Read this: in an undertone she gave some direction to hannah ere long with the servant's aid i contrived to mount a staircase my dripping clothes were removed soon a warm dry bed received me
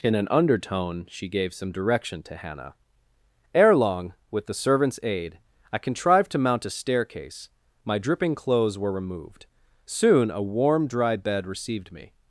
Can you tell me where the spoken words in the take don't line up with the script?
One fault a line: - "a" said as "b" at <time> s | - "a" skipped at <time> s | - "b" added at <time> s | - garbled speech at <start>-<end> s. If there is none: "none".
none